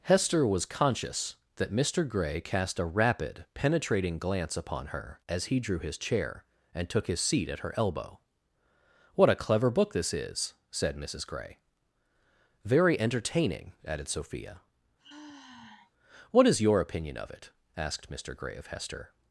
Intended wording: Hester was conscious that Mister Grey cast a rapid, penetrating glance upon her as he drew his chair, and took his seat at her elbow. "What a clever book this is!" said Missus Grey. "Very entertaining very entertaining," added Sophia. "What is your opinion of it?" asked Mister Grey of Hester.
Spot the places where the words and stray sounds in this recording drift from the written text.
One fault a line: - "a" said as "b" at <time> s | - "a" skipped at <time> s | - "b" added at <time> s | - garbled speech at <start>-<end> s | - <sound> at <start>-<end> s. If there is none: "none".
- "very entertaining" skipped at 13.7 s
- sigh at 15.0-15.9 s